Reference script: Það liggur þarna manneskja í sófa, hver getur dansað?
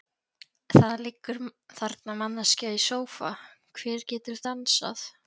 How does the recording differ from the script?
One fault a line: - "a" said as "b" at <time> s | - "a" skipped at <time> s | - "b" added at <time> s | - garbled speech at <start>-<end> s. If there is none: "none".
none